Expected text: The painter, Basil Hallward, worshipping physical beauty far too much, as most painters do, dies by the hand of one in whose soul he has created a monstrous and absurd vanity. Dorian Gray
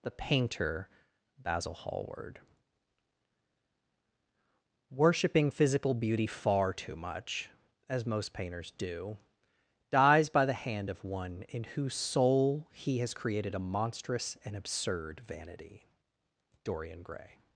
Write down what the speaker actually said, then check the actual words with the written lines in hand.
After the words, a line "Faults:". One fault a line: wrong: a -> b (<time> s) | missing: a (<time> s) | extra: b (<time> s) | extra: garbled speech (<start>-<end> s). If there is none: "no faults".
The painter, Basil Hallward, worshipping physical beauty far too much, as most painters do, dies by the hand of one in whose soul he has created a monstrous and absurd vanity. Dorian Gray
Faults:
no faults